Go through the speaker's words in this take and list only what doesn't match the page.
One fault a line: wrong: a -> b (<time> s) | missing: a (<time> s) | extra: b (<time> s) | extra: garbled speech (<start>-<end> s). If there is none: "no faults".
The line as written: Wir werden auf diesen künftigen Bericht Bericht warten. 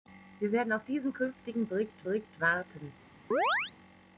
no faults